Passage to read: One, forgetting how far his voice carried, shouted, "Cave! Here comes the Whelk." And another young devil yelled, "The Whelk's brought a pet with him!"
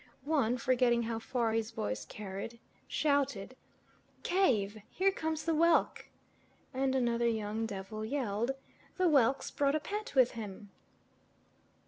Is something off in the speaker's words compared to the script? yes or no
no